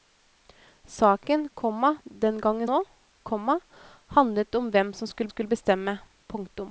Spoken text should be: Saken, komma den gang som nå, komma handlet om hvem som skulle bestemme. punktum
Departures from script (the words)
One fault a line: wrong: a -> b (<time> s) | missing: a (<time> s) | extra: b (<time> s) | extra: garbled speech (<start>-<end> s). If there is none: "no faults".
missing: som (2.7 s)
extra: skulle (5.3 s)